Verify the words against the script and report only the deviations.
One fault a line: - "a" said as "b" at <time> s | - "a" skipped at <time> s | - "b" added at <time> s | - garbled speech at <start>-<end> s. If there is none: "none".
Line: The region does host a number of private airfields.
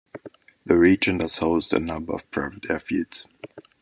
none